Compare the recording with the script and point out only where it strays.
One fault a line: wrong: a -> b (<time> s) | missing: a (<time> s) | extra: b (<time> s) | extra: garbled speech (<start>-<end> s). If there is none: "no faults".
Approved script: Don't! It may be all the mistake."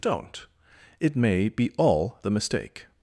no faults